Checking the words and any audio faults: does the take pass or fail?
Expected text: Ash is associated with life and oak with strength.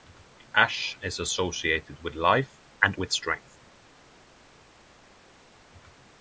fail